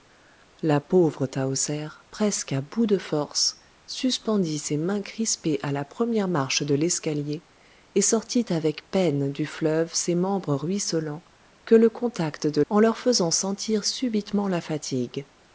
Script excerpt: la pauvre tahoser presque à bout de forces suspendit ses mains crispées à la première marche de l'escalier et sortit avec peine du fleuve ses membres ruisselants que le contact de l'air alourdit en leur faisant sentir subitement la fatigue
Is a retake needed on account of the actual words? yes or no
yes